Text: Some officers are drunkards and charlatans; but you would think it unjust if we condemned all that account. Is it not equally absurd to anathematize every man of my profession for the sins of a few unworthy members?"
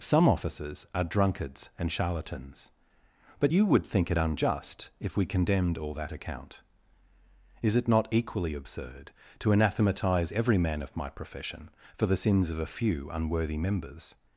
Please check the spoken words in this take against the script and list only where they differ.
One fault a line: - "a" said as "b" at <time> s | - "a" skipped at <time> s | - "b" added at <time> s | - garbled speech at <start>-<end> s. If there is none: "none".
none